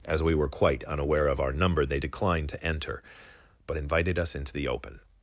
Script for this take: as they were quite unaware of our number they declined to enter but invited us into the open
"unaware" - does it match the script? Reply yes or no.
yes